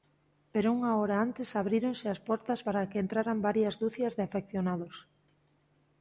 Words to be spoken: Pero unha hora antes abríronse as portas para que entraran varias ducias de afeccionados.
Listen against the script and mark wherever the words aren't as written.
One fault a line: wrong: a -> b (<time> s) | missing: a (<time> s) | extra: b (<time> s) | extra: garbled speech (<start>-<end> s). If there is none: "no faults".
no faults